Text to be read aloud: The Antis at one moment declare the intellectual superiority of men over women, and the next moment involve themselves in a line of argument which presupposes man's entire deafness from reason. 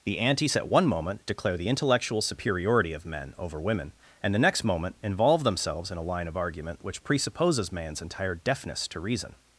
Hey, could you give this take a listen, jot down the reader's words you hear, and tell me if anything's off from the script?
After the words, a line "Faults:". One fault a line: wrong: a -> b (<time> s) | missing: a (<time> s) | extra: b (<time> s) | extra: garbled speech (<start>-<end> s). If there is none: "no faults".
The Antis at one moment declare the intellectual superiority of men over women, and the next moment involve themselves in a line of argument which presupposes man's entire deafness to reason.
Faults:
wrong: from -> to (8.9 s)